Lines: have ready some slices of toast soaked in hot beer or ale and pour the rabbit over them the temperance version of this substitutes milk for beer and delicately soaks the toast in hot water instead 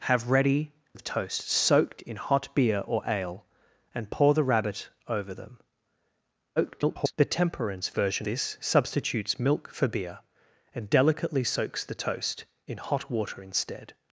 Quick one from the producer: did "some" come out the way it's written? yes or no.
no